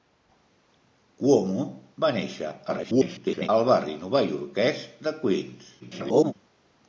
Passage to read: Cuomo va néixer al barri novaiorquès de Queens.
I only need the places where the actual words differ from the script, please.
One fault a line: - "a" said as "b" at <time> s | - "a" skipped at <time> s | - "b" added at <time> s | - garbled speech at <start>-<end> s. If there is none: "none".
- garbled speech at 2.7-3.5 s
- garbled speech at 5.8-6.3 s